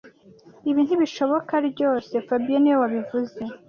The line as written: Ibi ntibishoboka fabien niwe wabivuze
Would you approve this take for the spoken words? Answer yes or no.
no